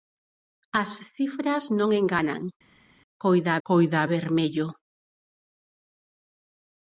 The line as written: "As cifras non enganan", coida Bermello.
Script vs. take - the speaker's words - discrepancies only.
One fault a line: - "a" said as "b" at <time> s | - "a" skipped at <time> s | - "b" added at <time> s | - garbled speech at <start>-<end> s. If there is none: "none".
- "coida" added at 3.7 s